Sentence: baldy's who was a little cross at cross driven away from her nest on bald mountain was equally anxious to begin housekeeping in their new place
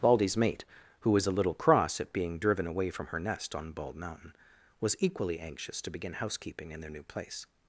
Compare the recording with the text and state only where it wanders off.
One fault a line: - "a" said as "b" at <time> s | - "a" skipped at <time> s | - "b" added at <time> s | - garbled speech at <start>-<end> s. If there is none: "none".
- "mate" added at 0.3 s
- "cross" said as "being" at 2.1 s